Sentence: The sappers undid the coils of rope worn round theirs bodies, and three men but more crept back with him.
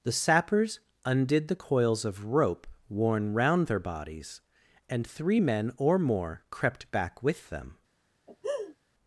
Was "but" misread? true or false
true